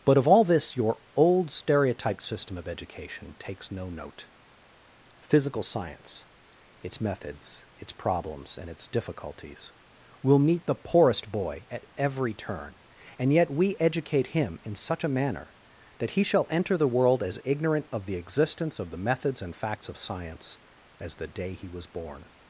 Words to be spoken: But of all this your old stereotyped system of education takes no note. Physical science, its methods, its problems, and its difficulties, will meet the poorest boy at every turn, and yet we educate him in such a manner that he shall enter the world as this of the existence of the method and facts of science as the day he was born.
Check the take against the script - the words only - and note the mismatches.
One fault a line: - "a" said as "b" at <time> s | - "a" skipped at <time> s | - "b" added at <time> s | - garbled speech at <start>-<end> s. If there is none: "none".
- "this" said as "ignorant" at 17.5 s
- "method" said as "methods" at 19.0 s